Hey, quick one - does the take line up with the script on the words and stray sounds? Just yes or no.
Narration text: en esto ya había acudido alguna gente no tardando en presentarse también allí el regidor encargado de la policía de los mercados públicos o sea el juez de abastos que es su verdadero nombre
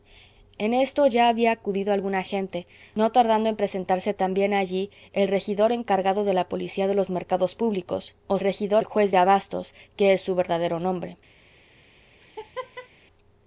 no